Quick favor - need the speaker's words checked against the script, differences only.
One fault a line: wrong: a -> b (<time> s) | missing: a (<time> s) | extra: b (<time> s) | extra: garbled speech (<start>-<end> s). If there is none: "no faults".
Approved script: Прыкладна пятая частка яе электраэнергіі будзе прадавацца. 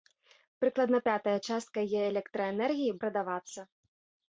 missing: будзе (3.0 s)